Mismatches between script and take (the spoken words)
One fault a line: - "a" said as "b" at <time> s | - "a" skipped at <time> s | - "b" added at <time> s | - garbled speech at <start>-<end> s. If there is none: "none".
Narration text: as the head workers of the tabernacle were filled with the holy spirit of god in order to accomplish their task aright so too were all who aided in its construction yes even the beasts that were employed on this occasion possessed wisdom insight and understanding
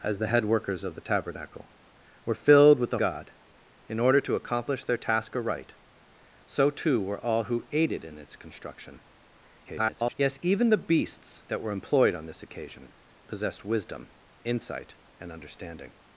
- "holy spirit of" skipped at 3.0 s
- garbled speech at 9.6-10.1 s